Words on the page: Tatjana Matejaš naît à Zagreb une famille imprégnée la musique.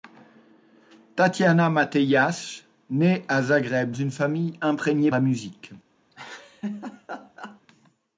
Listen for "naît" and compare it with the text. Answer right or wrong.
right